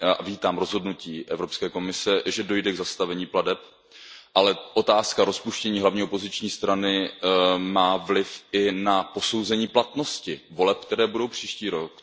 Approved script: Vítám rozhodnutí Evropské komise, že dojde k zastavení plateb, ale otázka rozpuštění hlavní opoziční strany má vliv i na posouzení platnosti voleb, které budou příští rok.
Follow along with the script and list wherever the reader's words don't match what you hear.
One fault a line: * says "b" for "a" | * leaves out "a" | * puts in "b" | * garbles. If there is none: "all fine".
all fine